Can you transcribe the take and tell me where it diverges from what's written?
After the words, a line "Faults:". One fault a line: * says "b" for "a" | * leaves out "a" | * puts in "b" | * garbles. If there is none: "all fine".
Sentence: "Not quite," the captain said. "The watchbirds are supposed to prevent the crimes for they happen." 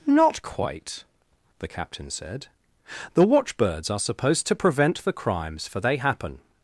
"Not quite," the captain said. "The watchbirds are supposed to prevent the crimes for they happen."
Faults:
all fine